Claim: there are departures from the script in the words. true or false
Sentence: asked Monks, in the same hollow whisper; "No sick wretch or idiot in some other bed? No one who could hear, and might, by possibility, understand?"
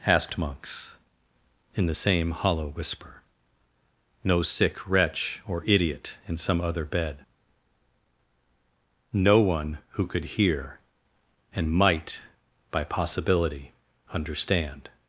false